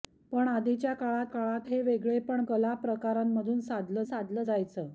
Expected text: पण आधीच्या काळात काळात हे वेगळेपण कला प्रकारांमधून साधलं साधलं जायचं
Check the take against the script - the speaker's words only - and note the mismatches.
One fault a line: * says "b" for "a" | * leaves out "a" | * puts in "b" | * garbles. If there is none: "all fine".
all fine